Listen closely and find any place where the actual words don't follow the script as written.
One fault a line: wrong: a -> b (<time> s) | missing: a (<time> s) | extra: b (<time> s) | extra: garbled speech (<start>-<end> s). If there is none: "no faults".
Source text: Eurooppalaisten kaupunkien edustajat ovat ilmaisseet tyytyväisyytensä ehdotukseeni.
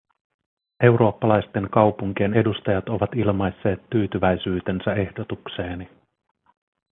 no faults